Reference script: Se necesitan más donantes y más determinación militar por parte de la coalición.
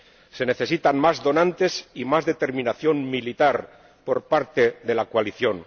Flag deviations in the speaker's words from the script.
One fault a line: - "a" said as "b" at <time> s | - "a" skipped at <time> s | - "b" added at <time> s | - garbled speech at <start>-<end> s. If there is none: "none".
none